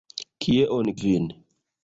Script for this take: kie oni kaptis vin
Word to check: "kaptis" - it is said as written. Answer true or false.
false